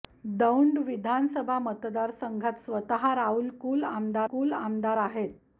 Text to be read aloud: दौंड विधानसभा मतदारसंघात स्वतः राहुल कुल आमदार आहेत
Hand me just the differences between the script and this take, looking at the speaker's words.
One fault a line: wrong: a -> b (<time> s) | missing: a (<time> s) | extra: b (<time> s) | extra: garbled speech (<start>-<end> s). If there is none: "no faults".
extra: कुल आमदार (4.3 s)